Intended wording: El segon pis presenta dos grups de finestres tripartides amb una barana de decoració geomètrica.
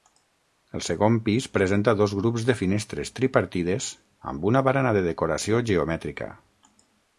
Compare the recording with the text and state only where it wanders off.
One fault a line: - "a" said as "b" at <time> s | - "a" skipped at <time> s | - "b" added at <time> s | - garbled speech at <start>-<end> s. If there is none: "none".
none